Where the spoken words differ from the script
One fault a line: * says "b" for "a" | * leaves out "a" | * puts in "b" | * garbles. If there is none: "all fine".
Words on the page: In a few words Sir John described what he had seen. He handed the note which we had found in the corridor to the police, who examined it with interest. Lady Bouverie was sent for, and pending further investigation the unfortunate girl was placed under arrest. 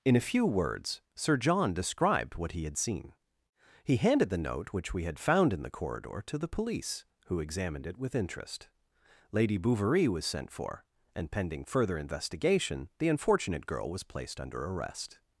all fine